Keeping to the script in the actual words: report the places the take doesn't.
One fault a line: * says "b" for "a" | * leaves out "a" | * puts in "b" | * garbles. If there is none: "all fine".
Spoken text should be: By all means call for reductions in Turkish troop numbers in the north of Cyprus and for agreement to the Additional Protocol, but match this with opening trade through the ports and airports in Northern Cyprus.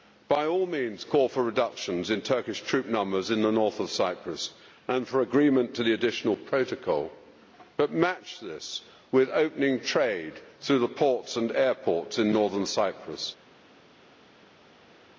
all fine